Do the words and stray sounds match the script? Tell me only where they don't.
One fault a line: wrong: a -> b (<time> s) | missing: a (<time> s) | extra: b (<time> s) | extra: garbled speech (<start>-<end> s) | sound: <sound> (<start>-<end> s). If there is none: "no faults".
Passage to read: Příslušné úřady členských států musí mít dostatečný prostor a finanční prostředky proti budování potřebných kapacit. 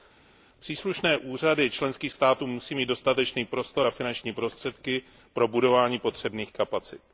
wrong: proti -> pro (5.3 s)